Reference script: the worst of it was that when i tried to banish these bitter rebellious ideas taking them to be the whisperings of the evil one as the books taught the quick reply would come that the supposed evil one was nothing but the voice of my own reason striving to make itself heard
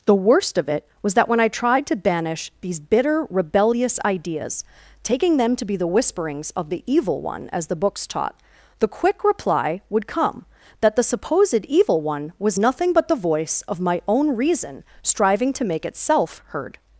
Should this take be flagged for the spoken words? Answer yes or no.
no